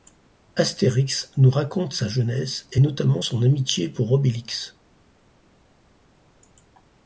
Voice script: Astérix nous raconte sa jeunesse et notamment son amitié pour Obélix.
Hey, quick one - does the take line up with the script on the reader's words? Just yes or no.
yes